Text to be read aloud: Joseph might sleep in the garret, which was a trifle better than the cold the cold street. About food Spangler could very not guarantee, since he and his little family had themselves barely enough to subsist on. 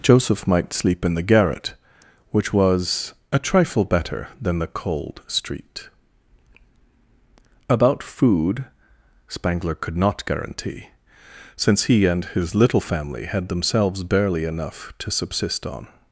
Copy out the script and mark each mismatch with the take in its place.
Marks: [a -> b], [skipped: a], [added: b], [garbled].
Joseph might sleep in the garret, which was a trifle better than the cold [skipped: the cold] street. About food Spangler could [skipped: very] not guarantee, since he and his little family had themselves barely enough to subsist on.